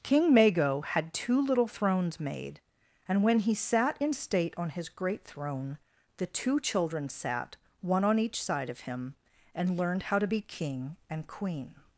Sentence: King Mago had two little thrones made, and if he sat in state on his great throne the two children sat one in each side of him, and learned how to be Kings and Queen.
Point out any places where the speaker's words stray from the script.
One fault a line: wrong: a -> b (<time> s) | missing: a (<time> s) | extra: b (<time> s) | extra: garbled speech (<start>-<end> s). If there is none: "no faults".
wrong: if -> when (3.2 s)
wrong: in -> on (8.0 s)
wrong: Kings -> King (10.4 s)